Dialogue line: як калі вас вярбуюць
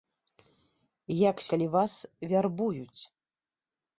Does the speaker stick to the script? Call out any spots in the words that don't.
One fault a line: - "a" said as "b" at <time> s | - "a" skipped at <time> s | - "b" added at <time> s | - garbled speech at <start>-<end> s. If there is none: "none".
none